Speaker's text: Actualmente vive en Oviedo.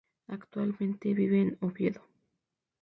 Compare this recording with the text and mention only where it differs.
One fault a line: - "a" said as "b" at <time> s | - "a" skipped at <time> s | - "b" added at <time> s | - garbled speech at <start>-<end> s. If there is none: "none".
none